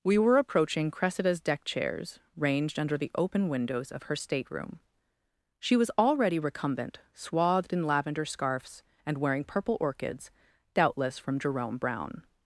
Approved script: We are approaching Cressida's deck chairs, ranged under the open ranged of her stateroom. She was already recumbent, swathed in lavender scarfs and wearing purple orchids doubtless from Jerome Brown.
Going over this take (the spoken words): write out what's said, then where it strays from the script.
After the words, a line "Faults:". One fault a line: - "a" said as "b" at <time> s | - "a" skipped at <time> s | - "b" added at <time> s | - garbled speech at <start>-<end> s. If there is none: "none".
We were approaching Cressida's deck chairs, ranged under the open windows of her stateroom. She was already recumbent, swathed in lavender scarfs and wearing purple orchids doubtless from Jerome Brown.
Faults:
- "are" said as "were" at 0.2 s
- "ranged" said as "windows" at 3.5 s